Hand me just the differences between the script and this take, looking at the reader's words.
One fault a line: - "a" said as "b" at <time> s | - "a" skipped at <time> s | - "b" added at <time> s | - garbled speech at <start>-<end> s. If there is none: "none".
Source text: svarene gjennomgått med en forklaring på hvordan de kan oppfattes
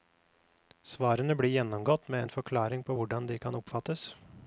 - "blir" added at 1.4 s